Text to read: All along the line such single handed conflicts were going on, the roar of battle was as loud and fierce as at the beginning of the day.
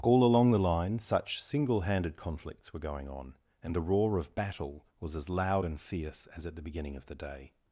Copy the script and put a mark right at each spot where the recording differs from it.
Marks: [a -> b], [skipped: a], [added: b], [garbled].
All along the line such single handed conflicts were going on, [added: and] the roar of battle was as loud and fierce as at the beginning of the day.